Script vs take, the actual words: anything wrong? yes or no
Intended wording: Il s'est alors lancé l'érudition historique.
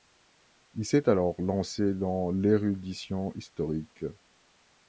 yes